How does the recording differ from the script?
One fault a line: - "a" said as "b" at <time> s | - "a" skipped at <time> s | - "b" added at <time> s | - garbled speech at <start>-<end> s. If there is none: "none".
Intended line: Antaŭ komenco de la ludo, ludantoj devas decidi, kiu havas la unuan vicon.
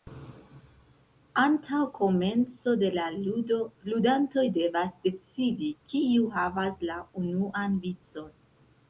none